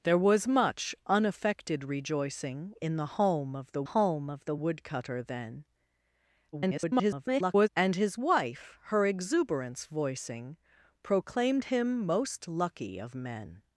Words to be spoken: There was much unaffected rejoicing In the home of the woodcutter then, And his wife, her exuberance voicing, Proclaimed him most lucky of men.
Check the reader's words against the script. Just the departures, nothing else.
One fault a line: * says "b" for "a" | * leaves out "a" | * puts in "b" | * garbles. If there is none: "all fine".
* puts in "home of the"
* garbles